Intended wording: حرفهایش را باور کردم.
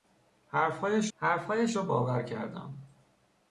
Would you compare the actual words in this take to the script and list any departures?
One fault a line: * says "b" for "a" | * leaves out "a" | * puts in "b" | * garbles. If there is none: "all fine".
* puts in "حرفهایش"